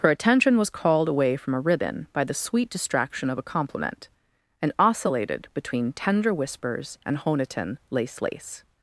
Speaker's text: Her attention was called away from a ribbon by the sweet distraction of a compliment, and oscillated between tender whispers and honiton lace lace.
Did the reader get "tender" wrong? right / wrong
right